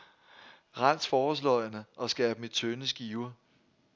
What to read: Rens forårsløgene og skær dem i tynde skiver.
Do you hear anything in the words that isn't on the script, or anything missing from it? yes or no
no